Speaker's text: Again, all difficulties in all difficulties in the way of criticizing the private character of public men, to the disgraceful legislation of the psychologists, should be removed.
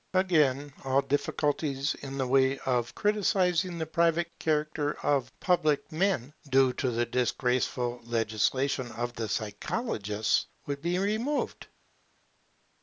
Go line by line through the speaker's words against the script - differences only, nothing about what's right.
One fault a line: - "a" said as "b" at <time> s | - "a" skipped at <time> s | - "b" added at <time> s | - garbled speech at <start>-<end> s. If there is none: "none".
- "all difficulties in" skipped at 2.2 s
- "due" added at 6.5 s
- "should" said as "would" at 10.7 s